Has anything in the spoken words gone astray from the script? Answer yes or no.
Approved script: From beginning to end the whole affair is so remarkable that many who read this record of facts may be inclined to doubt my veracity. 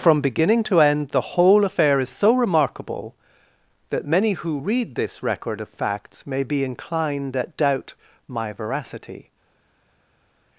yes